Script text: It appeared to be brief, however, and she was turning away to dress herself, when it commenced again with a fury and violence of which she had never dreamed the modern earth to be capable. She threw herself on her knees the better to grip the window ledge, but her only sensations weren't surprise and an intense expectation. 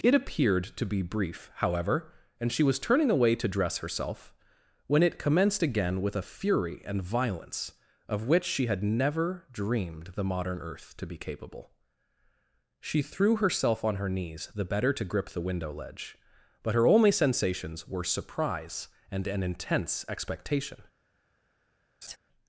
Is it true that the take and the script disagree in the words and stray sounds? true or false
true